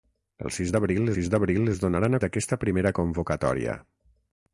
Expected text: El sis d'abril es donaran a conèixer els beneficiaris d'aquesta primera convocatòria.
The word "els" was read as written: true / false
false